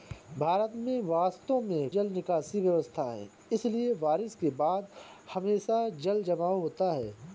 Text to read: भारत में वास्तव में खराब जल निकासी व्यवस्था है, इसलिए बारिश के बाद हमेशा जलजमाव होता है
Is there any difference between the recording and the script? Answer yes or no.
yes